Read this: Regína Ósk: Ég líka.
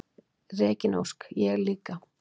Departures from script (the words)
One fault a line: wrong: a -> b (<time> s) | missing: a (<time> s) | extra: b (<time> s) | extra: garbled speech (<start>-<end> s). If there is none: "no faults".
no faults